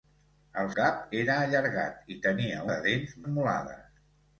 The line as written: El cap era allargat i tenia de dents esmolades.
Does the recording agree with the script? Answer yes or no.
yes